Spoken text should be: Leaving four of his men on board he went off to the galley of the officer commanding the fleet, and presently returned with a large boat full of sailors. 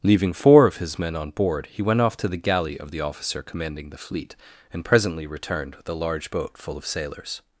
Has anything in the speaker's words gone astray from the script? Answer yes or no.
no